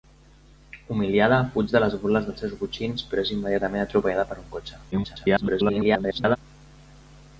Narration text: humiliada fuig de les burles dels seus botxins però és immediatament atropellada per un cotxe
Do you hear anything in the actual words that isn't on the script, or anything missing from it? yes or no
yes